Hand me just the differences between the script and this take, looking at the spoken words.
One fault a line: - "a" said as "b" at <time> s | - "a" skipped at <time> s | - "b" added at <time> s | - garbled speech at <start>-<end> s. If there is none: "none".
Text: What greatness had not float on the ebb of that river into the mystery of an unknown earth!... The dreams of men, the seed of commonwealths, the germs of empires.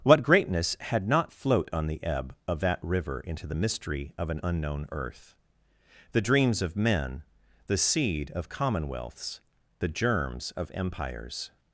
none